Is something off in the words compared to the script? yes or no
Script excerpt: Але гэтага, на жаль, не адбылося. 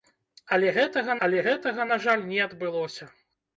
yes